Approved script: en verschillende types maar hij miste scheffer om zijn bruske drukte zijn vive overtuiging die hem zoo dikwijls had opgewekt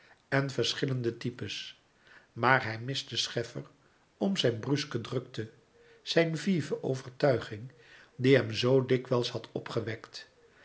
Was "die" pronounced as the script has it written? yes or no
yes